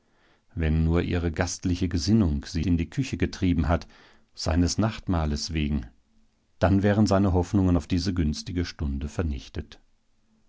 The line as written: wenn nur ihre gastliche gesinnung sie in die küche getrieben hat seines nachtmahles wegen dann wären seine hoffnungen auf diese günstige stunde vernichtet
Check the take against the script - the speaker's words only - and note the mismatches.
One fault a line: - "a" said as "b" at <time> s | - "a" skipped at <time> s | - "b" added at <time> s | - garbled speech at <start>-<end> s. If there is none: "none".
none